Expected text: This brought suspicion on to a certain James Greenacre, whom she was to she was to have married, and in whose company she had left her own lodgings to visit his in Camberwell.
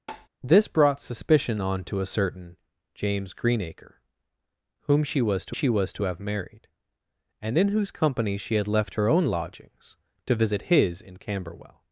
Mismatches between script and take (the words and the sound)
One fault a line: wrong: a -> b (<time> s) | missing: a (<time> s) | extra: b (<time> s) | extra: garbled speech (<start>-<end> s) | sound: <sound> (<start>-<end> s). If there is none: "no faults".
sound: tap (0.1-0.3 s)